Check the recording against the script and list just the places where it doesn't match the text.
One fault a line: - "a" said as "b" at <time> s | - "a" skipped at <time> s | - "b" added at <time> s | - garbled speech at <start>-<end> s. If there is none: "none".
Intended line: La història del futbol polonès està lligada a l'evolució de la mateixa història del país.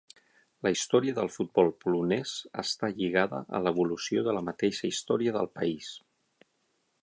none